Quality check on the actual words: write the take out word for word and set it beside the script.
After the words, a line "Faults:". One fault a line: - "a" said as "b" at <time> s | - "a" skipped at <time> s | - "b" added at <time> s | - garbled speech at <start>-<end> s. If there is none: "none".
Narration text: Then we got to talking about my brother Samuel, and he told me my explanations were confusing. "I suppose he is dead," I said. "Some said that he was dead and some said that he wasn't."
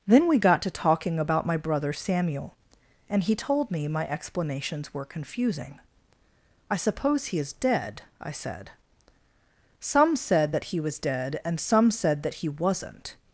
Then we got to talking about my brother Samuel, and he told me my explanations were confusing. "I suppose he is dead," I said. "Some said that he was dead and some said that he wasn't."
Faults:
none